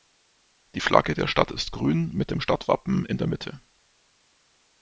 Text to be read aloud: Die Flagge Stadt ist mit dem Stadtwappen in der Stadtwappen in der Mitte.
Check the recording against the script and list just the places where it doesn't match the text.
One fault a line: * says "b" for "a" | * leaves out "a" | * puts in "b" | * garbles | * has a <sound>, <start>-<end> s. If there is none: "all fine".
* puts in "der"
* puts in "grün"
* leaves out "Stadtwappen in der"